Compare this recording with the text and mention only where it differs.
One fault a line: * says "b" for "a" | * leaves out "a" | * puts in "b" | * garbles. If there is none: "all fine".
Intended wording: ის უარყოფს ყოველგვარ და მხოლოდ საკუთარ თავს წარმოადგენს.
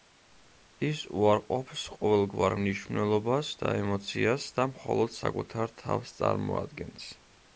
* puts in "მნიშვნელობას და ემოციას"